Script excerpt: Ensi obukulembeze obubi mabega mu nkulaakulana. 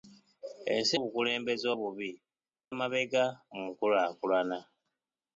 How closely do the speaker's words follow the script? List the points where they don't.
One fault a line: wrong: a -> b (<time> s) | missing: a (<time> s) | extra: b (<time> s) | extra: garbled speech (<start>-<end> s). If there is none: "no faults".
no faults